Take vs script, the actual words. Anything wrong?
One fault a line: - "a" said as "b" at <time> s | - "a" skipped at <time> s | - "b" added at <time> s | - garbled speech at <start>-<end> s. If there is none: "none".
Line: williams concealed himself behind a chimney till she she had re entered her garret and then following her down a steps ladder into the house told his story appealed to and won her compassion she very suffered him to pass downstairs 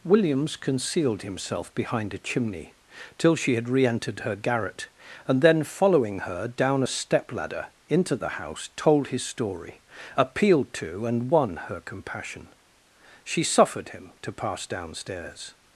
- "she" skipped at 3.5 s
- "steps" said as "step" at 6.9 s
- "very" skipped at 13.4 s